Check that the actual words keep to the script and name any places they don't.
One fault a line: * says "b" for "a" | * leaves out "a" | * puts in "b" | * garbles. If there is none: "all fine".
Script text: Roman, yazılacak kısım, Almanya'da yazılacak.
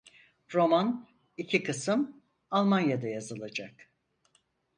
* says "iki" for "yazılacak"